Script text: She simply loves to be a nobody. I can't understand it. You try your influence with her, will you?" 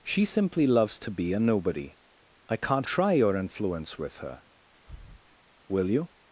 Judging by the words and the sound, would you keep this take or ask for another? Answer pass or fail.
fail